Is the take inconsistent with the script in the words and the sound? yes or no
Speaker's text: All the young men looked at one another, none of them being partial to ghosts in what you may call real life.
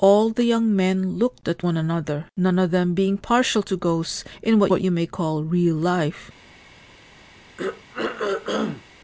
yes